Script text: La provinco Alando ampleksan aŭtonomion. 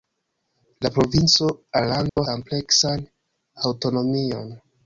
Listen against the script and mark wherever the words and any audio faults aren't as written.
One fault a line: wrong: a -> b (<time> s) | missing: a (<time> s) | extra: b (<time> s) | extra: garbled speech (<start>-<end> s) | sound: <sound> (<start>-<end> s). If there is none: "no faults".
sound: dropout (2.1-2.2 s)